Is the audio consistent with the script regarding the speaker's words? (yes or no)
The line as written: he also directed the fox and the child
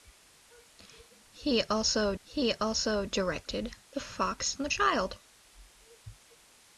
no